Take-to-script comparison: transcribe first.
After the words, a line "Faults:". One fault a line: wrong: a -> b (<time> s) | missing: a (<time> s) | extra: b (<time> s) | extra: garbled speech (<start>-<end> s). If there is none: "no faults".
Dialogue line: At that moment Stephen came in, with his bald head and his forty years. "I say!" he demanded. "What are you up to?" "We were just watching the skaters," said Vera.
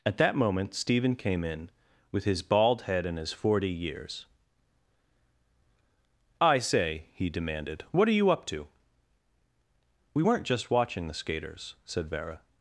At that moment Stephen came in, with his bald head and his forty years. "I say!" he demanded. "What are you up to?" "We weren't just watching the skaters," said Vera.
Faults:
wrong: were -> weren't (10.2 s)